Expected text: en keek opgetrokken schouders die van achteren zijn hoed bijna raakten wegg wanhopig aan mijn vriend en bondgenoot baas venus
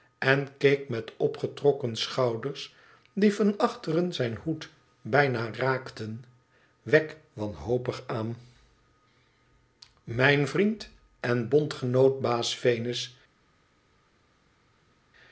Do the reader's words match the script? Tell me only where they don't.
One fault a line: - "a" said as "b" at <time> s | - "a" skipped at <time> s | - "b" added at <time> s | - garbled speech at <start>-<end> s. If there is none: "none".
- "met" added at 0.9 s